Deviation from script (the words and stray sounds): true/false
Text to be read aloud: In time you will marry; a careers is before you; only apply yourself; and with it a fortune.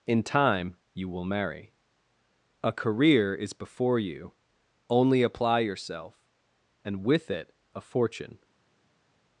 true